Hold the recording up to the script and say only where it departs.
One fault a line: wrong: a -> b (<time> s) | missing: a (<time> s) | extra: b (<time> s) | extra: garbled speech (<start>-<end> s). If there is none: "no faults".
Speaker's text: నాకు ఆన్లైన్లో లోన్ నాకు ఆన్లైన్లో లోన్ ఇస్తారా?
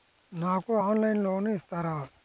missing: నాకు ఆన్లైన్లో లోన్ (1.5 s)